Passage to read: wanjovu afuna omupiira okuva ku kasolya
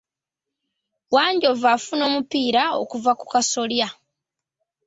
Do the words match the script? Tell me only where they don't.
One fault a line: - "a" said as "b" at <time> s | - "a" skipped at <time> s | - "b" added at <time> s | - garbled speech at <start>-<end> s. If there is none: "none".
none